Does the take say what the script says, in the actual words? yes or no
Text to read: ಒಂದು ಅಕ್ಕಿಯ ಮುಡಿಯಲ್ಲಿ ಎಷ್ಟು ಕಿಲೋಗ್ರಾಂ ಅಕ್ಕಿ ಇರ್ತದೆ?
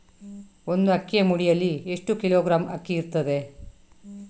yes